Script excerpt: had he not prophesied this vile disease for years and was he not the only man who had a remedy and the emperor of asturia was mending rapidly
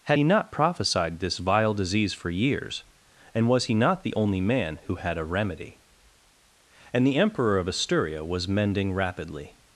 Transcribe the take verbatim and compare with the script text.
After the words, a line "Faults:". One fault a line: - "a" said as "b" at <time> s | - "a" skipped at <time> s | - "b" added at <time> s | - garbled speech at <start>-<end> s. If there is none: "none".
had he not prophesied this vile disease for years and was he not the only man who had a remedy and the emperor of asturia was mending rapidly
Faults:
none